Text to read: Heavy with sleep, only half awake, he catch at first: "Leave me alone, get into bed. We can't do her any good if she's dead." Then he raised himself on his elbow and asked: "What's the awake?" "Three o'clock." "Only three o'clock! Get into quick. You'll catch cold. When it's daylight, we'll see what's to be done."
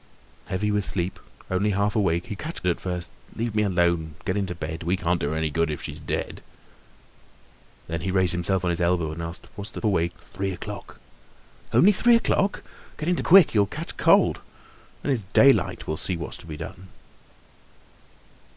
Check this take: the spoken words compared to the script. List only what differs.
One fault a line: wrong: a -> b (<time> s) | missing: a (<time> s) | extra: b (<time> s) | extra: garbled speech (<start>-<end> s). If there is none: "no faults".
no faults